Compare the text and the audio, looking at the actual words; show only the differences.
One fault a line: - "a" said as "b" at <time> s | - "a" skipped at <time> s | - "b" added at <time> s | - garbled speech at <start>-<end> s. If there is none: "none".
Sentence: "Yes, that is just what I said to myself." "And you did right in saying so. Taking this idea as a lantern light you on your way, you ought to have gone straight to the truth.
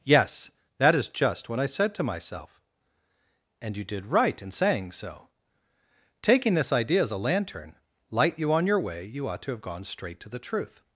none